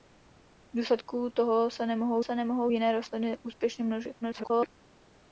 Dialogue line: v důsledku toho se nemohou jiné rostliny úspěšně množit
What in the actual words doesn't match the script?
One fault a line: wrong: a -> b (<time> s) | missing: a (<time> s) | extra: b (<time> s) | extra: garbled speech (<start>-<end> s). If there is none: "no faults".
extra: se nemohou (2.2 s)
extra: garbled speech (4.2-4.7 s)